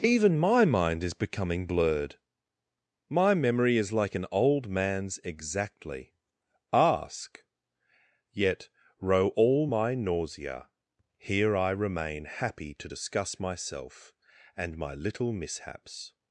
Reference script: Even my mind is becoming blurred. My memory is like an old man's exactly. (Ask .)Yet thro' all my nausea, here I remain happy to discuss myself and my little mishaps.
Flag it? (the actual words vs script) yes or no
yes